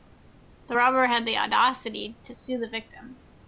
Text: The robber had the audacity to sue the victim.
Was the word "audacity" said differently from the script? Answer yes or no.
no